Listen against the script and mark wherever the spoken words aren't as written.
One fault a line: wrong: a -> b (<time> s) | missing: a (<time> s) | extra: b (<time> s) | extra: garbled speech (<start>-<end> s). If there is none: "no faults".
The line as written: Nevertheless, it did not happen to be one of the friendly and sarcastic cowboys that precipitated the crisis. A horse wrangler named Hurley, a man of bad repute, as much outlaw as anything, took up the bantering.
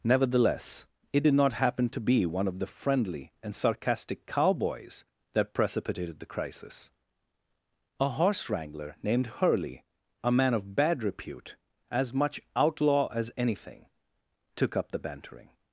no faults